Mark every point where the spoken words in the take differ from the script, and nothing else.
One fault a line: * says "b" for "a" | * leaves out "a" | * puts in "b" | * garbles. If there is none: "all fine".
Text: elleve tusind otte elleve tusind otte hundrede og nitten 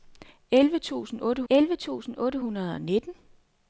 all fine